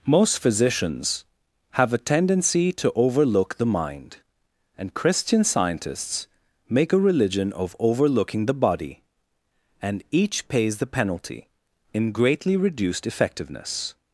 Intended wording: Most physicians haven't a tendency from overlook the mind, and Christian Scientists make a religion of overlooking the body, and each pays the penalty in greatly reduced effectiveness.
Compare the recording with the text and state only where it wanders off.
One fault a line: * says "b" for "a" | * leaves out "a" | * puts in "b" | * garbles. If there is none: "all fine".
* says "have" for "haven't"
* says "to" for "from"